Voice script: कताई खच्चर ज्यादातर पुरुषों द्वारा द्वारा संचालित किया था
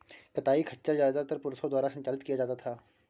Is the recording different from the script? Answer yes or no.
yes